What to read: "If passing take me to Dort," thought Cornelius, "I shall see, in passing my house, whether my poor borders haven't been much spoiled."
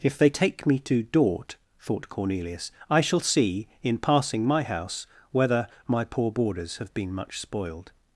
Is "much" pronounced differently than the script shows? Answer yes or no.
no